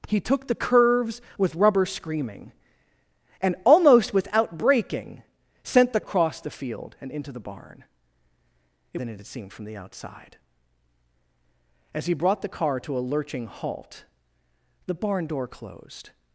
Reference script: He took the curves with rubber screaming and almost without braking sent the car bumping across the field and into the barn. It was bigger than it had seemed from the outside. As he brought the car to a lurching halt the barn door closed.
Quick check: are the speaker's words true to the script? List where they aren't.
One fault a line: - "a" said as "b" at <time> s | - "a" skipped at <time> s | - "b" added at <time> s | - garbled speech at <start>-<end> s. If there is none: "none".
- "car bumping" skipped at 6.0 s
- "was bigger" skipped at 9.0 s